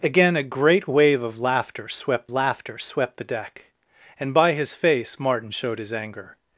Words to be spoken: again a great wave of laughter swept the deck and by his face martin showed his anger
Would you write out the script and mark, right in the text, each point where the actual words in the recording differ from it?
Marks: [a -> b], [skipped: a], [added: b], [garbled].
again a great wave of laughter swept [added: laughter swept] the deck and by his face martin showed his anger